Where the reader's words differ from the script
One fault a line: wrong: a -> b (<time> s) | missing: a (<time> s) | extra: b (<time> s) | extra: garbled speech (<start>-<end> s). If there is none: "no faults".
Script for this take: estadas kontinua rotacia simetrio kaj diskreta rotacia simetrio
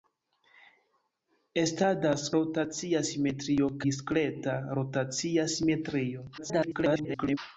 missing: kontinua (2.2 s)
missing: kaj (3.7 s)
extra: garbled speech (6.4-7.4 s)